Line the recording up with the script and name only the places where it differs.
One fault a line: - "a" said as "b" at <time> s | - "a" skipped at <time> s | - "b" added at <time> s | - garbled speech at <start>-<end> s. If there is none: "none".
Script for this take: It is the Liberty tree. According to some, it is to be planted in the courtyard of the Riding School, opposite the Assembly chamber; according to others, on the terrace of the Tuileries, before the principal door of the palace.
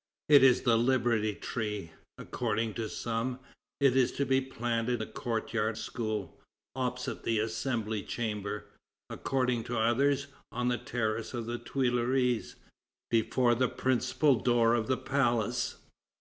- "in" skipped at 5.0 s
- "of the Riding" skipped at 5.8 s